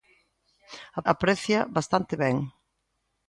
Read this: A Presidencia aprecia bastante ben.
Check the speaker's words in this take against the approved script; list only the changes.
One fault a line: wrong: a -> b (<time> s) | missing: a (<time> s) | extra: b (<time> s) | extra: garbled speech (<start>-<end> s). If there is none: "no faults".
missing: Presidencia (1.0 s)